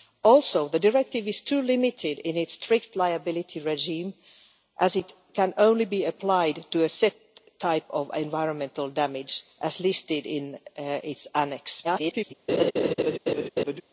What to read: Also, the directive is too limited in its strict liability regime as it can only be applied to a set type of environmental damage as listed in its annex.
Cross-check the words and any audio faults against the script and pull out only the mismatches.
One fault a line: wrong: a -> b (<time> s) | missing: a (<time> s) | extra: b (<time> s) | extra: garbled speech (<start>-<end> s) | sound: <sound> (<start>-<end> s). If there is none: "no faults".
extra: garbled speech (11.8-12.3 s)
sound: laugh (12.5-13.8 s)